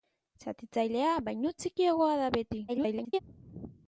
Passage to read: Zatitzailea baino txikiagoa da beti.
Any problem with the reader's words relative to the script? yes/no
yes